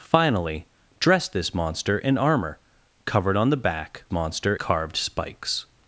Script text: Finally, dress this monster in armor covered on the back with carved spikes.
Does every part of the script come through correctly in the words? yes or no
no